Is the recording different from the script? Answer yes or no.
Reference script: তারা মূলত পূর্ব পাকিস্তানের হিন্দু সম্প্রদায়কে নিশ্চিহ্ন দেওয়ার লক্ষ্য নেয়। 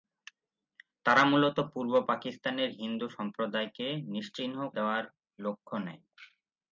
no